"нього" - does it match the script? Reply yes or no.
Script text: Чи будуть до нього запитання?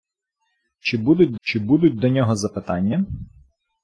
yes